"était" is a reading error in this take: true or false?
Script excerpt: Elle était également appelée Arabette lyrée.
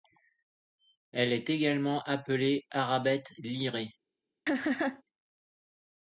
true